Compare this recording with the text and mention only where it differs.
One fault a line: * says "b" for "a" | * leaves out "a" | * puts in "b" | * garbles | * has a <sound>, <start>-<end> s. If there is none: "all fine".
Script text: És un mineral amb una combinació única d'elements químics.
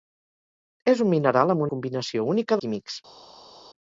* leaves out "una"
* leaves out "d'elements"